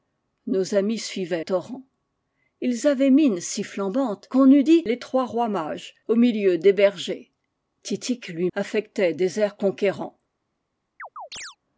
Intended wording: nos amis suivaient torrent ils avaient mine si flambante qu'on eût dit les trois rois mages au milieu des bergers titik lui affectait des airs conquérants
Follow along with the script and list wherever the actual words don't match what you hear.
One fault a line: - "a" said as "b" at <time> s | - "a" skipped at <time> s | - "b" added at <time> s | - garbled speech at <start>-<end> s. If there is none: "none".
none